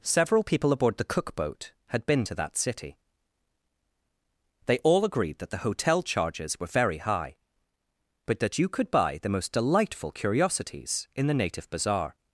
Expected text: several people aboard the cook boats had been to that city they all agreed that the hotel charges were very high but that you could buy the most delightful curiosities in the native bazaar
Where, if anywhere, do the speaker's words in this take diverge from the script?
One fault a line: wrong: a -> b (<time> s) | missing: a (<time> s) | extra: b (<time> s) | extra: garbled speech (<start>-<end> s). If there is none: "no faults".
wrong: boats -> boat (1.4 s)